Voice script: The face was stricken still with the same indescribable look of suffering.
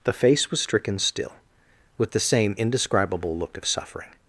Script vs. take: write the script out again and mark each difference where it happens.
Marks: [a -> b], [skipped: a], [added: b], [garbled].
The face was stricken still with the same indescribable look of suffering.